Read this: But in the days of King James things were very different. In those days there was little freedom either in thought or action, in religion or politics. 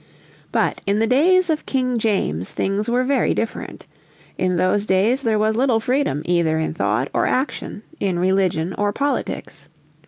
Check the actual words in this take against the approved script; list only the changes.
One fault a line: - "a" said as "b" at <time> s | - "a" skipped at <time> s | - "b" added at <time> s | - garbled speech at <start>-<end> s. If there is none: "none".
none